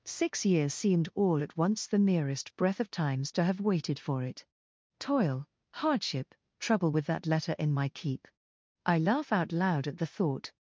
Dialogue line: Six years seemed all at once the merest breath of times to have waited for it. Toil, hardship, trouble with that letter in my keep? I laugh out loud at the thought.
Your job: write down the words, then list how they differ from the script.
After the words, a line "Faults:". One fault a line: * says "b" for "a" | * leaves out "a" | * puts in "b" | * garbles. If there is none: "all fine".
Six years seemed all at once the merest breath of times to have waited for it. Toil, hardship, trouble with that letter in my keep? I laugh out loud at the thought.
Faults:
all fine